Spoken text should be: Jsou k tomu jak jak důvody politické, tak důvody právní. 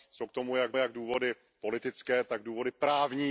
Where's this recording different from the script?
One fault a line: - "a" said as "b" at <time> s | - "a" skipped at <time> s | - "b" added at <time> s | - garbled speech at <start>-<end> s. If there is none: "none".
none